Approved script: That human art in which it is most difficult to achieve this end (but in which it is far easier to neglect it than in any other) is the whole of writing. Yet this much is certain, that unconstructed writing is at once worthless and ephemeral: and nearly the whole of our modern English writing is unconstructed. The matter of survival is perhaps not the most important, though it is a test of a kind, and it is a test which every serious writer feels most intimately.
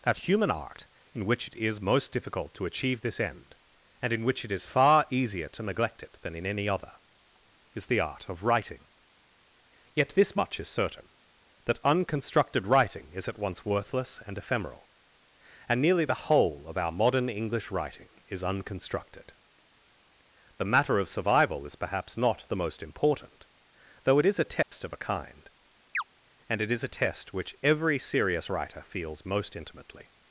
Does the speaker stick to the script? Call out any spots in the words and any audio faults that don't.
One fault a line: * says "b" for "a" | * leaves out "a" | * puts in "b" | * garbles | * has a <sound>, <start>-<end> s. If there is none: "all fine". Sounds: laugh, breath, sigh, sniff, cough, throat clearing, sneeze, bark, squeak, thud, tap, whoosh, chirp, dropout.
* says "and" for "but"
* says "art" for "whole"
* has a dropout, 24.6-24.7 s
* has a chirp, 25.9-26.0 s